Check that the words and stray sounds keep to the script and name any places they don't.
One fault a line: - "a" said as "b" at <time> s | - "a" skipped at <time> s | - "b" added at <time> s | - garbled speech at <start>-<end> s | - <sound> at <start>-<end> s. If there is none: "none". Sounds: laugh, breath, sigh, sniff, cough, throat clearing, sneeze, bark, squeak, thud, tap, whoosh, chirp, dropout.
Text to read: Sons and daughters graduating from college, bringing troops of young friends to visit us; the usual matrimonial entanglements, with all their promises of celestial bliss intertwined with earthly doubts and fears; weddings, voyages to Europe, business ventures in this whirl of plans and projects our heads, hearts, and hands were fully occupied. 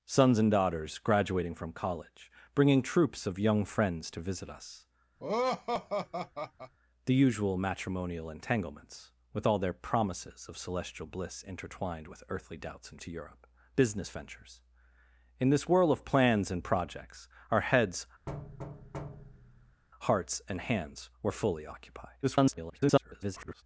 - laugh at 5.2-6.7 s
- "fears weddings voyages" skipped at 13.0 s
- thud at 18.3-19.8 s
- garbled speech at 22.2-23.6 s